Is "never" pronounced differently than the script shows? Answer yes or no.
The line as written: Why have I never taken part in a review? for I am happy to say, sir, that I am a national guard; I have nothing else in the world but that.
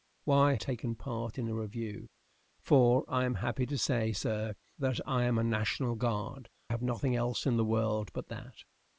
yes